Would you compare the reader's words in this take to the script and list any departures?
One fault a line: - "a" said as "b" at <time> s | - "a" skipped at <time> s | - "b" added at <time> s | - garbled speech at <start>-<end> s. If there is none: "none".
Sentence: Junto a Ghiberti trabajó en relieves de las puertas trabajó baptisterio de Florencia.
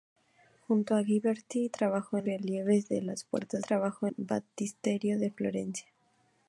none